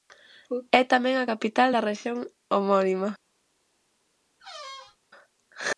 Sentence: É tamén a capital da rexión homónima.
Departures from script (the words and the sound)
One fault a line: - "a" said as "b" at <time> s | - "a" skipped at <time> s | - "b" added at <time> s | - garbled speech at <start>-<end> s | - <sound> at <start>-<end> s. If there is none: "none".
- squeak at 4.4-5.0 s